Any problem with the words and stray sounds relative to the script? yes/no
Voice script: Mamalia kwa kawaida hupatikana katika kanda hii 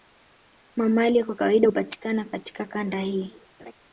yes